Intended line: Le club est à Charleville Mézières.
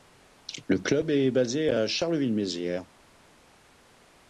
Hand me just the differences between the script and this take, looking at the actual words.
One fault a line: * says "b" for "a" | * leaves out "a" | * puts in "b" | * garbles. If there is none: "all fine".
* puts in "basé"